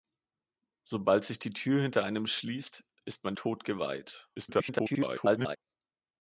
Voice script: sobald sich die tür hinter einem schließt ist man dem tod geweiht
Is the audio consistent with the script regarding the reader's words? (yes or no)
no